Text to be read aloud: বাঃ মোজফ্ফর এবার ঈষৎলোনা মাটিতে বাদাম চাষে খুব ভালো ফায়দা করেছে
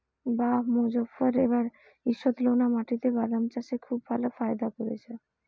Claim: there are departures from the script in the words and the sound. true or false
false